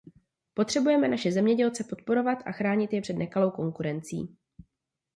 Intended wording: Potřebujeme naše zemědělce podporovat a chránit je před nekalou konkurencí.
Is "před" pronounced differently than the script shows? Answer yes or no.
no